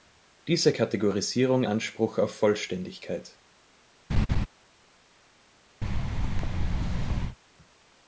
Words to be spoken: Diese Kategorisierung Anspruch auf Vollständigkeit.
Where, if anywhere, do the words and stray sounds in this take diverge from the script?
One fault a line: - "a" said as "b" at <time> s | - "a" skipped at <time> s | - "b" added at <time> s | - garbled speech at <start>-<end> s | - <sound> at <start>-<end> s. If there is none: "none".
- laugh at 4.1-4.5 s
- thud at 5.8-7.4 s